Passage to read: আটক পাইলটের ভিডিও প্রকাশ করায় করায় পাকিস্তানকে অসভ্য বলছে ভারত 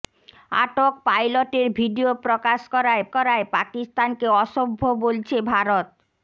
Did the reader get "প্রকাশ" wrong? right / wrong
right